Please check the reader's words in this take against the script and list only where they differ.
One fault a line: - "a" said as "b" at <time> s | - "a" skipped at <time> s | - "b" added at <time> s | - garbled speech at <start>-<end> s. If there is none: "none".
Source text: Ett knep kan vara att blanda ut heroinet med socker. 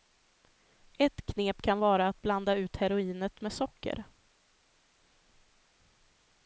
none